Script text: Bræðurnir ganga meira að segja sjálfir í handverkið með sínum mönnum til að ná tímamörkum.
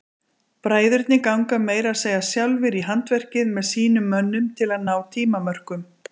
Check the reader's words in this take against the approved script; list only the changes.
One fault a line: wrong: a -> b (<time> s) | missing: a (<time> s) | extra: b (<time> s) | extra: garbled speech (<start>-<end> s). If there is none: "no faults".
no faults